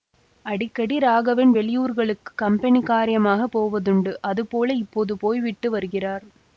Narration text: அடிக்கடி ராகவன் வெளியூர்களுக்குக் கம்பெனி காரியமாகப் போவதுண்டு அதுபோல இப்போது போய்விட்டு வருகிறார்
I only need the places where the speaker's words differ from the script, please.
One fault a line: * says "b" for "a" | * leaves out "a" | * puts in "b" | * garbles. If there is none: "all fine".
all fine